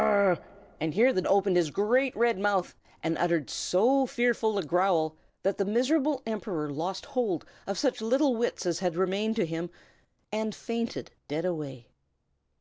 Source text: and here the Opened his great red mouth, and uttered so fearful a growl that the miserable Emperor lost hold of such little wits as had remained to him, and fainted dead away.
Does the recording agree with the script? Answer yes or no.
yes